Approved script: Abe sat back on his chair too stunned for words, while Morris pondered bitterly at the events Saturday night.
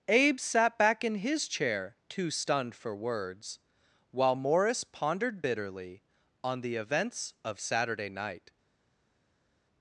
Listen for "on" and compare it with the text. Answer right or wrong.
wrong